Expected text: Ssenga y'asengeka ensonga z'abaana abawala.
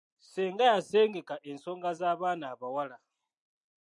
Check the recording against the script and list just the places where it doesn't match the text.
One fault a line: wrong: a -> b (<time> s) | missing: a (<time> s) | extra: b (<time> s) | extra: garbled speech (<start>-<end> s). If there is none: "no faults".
no faults